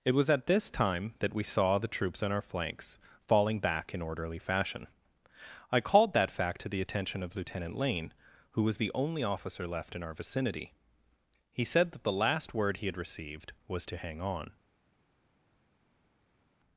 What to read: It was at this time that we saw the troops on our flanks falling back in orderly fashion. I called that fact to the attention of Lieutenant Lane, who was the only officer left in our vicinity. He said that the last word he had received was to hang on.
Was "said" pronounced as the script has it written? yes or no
yes